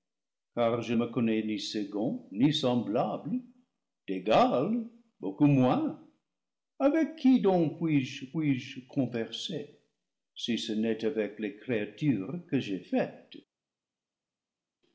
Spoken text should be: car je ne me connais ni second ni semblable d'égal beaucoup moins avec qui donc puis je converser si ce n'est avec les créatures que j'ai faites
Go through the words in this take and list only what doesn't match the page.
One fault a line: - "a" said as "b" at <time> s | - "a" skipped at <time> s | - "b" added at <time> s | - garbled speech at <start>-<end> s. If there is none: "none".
- "ne" skipped at 0.9 s
- "puis je" added at 8.3 s